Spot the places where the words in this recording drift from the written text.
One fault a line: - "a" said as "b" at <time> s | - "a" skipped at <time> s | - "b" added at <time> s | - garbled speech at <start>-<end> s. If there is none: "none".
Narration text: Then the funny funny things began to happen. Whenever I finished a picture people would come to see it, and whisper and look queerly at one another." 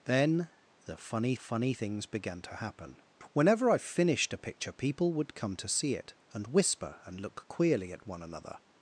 none